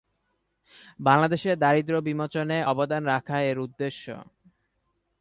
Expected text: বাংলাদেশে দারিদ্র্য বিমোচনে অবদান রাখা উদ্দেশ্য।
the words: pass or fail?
fail